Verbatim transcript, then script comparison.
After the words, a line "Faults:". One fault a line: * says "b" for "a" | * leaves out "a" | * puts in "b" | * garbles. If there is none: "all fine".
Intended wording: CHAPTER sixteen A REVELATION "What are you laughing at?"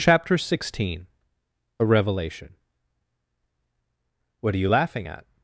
CHAPTER sixteen A REVELATION "What are you laughing at?"
Faults:
all fine